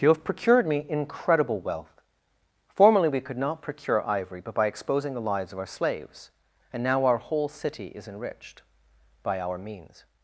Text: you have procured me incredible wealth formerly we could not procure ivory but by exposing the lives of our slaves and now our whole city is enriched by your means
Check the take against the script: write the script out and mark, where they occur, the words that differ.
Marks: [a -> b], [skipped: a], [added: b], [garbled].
you have procured me incredible wealth formerly we could not procure ivory but by exposing the lives of our slaves and now our whole city is enriched by [your -> our] means